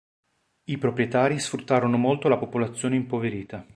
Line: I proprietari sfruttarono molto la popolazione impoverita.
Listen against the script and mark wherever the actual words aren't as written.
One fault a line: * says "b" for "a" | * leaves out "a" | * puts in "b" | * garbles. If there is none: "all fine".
all fine